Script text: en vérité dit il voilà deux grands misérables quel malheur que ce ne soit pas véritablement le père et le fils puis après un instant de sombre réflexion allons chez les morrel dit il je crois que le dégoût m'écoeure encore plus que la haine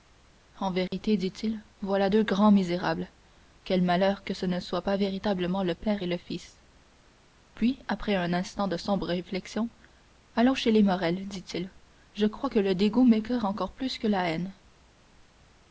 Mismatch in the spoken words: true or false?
false